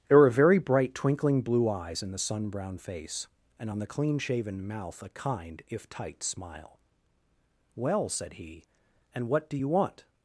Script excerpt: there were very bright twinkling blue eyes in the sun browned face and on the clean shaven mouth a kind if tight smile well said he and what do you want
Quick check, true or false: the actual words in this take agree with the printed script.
false